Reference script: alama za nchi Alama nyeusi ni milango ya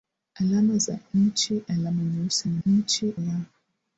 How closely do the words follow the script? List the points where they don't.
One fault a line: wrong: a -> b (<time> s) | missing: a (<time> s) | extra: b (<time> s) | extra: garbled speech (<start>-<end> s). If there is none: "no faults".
wrong: milango -> nchi (2.6 s)